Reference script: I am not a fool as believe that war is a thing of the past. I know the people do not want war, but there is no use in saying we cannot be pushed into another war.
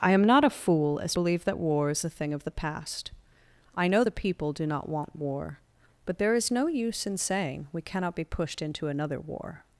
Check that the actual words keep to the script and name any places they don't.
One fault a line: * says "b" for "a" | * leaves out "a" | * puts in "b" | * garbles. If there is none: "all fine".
all fine